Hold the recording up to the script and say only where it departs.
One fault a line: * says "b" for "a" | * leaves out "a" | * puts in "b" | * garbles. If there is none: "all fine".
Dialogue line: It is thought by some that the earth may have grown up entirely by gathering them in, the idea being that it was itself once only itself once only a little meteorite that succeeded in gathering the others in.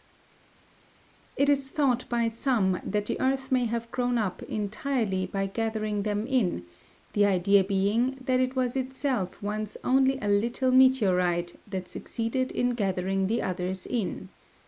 * leaves out "itself once only"